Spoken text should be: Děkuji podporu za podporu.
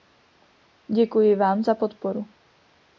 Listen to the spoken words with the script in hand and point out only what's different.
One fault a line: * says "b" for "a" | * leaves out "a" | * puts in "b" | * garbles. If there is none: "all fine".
* says "vám" for "podporu"